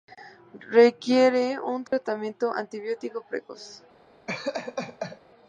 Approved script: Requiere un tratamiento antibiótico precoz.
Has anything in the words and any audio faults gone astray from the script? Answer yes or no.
yes